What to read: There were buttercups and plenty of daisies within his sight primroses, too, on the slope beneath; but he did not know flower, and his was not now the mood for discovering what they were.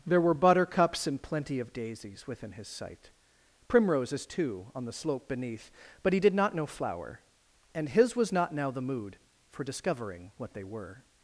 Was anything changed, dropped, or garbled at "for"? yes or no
no